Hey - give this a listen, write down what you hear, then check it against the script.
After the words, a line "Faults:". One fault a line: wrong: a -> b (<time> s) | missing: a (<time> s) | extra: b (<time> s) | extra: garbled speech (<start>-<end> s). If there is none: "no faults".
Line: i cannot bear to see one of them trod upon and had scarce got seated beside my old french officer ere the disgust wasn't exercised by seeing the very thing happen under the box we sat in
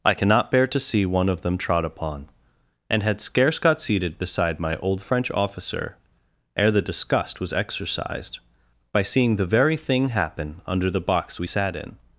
i cannot bear to see one of them trod upon and had scarce got seated beside my old french officer ere the disgust was exercised by seeing the very thing happen under the box we sat in
Faults:
wrong: wasn't -> was (7.4 s)